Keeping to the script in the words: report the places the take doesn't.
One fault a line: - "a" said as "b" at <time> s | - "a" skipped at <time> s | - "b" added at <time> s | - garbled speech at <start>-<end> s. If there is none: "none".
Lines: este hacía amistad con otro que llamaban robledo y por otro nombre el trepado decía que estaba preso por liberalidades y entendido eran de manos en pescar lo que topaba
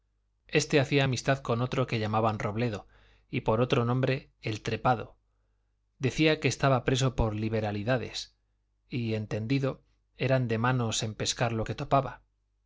none